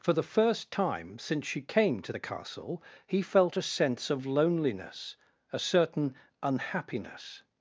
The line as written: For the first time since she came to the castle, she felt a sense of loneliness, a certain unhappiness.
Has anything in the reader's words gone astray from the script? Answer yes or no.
yes